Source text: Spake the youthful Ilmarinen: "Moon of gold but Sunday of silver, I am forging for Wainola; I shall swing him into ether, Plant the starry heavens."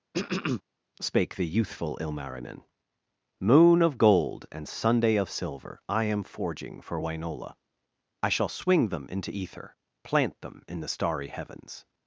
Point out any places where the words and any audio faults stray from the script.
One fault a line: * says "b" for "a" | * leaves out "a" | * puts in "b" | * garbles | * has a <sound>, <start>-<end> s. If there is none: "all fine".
* has a throat clearing, 0.1-0.6 s
* says "and" for "but"
* says "them" for "him"
* puts in "them in"